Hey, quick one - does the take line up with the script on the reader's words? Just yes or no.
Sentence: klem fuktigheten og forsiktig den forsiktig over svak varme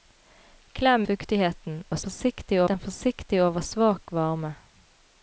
yes